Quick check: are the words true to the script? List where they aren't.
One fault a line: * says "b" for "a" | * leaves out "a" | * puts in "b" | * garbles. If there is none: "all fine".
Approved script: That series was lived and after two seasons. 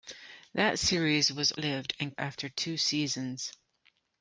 all fine